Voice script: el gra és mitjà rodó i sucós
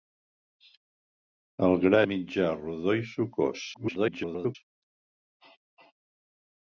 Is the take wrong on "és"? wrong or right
wrong